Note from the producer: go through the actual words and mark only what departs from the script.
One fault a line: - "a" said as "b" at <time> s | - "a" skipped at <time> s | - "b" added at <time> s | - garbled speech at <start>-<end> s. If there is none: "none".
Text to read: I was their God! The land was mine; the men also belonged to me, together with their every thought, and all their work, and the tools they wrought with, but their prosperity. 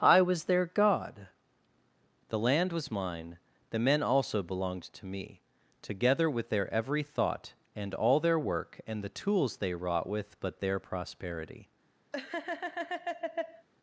none